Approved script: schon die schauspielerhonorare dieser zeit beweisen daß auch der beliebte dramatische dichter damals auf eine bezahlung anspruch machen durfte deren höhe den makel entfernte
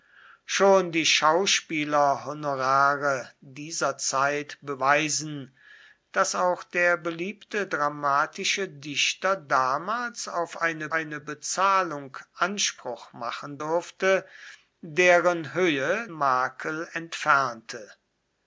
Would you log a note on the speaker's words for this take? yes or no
yes